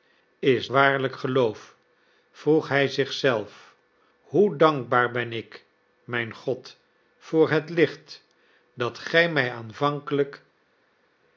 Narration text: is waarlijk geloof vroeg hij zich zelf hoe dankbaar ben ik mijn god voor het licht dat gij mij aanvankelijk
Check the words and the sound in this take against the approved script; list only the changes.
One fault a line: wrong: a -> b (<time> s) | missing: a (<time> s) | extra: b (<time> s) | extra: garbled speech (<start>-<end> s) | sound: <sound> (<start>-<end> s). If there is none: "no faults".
no faults